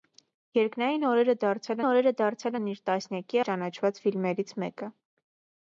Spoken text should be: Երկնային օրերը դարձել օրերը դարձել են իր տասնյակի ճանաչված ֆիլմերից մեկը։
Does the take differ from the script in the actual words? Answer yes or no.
no